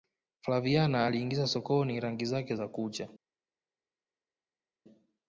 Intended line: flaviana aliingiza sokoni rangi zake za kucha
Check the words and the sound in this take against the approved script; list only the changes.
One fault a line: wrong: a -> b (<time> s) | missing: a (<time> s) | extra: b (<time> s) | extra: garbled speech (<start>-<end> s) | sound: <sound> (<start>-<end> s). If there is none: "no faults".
no faults